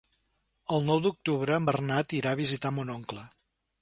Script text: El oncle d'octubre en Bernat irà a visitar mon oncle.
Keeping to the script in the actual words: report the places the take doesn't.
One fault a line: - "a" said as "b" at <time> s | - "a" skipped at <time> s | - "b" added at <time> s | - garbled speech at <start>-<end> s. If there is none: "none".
- "oncle" said as "nou" at 0.9 s